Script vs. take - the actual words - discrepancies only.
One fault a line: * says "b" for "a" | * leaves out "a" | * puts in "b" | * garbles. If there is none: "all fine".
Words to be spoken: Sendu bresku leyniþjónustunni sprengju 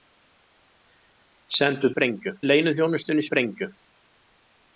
* says "sprengju" for "bresku"